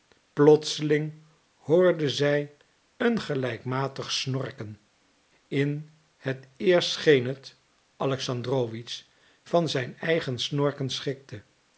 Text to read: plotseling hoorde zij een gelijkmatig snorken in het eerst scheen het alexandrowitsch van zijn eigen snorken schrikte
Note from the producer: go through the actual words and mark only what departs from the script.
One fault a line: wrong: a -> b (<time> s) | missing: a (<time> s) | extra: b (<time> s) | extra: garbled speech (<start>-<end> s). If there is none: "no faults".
no faults